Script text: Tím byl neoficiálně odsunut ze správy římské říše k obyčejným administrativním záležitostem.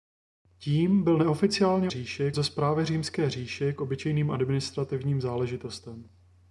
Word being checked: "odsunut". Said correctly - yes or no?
no